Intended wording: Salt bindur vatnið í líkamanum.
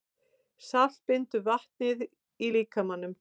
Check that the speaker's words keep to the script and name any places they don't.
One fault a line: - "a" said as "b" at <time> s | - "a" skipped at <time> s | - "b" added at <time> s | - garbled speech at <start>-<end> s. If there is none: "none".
none